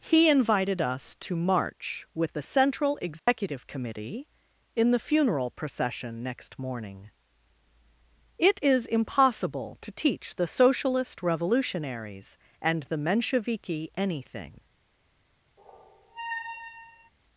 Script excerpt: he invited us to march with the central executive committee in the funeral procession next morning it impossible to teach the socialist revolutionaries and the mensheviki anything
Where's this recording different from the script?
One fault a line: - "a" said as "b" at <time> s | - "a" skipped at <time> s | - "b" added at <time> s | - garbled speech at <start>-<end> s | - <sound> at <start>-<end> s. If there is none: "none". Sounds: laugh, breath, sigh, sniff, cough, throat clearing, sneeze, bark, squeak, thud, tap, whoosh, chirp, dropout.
- dropout at 3.2-3.3 s
- "is" added at 8.6 s
- squeak at 15.6-17.1 s